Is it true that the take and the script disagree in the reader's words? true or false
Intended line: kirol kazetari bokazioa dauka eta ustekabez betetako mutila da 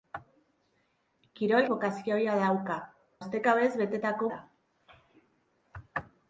true